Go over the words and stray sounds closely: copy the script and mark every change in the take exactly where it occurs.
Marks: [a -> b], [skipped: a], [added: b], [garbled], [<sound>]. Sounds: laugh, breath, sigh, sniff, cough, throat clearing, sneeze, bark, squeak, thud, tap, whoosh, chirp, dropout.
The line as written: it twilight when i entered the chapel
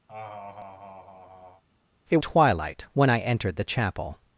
[laugh] it twilight when i entered the chapel